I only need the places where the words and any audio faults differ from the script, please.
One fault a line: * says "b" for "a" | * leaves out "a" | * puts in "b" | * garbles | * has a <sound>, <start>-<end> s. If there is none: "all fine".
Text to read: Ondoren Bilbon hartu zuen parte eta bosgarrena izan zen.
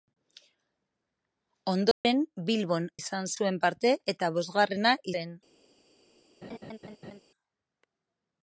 * has a dropout, 1.9-2.0 s
* says "izan" for "hartu"
* leaves out "izan"
* has a laugh, 6.4-7.2 s